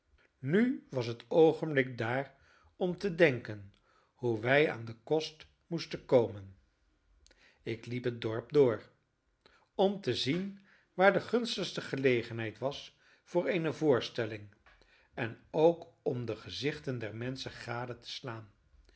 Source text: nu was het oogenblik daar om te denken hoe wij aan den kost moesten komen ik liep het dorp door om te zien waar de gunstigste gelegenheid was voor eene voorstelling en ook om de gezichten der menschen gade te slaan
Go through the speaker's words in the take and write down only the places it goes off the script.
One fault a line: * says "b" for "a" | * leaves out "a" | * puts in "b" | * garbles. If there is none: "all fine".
all fine